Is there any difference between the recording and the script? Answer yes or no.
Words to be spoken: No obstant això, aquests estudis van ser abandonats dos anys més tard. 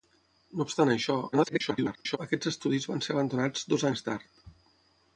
yes